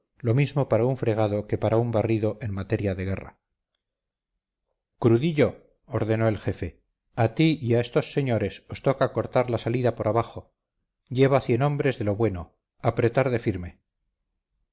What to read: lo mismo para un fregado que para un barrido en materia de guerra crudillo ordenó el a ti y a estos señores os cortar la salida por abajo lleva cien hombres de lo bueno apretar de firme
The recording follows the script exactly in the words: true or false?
false